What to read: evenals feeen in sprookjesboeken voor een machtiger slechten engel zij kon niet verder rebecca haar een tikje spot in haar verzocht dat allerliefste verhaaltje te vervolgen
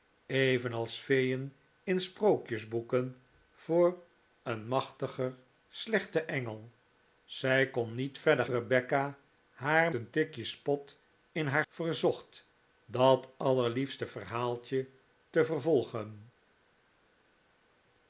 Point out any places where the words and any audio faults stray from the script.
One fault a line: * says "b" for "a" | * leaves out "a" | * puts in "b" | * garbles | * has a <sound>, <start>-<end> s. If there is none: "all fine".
all fine